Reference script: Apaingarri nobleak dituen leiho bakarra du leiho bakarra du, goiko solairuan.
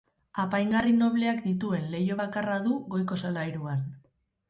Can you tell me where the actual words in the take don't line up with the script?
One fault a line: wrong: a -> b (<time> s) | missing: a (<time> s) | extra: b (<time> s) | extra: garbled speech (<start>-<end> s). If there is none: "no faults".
missing: leiho bakarra du (2.8 s)